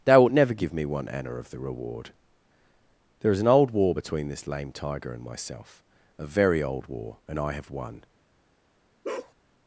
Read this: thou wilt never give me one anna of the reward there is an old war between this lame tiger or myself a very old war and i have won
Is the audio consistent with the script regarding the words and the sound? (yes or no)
no